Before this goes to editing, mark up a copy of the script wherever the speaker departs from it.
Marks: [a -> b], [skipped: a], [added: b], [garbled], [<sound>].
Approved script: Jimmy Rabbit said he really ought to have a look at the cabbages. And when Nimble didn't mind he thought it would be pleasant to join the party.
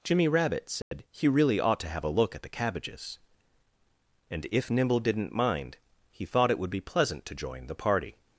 Jimmy Rabbit said [dropout] he really ought to have a look at the cabbages. And [when -> if] Nimble didn't mind he thought it would be pleasant to join the party.